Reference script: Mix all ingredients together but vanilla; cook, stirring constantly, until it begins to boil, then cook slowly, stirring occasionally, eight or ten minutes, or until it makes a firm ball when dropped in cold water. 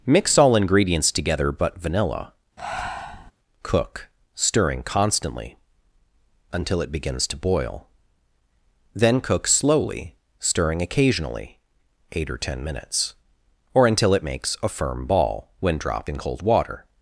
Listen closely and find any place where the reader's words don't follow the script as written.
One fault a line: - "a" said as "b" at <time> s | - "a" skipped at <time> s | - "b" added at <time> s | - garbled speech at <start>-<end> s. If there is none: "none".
none